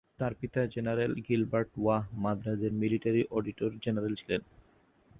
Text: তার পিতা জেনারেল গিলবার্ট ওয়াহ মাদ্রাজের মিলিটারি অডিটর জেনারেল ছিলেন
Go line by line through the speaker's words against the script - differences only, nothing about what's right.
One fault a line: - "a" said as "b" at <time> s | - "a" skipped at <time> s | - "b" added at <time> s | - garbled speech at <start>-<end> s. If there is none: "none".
none